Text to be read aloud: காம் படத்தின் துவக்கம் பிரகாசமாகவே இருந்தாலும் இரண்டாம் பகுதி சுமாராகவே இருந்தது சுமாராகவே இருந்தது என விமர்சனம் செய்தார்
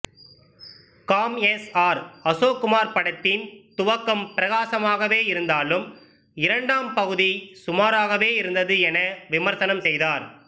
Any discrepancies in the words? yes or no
yes